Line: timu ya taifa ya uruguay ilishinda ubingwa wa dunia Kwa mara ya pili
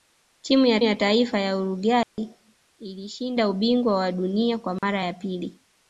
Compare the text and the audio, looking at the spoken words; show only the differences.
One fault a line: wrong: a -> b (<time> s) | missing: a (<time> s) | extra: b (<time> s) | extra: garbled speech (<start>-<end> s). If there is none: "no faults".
extra: ya (0.8 s)